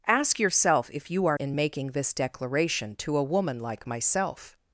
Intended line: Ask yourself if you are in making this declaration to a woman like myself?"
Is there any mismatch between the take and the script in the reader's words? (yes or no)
no